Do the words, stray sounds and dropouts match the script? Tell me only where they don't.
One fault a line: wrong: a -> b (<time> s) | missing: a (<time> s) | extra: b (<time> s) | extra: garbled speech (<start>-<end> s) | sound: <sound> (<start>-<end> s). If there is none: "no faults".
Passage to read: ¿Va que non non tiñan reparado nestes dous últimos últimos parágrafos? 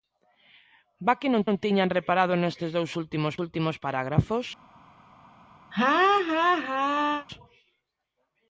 sound: laugh (5.7-7.3 s)